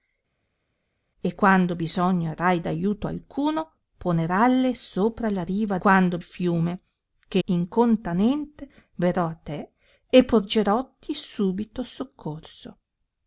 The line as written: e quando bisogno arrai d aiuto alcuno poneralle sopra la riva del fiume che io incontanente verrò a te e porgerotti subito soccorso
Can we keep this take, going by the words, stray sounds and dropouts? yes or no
no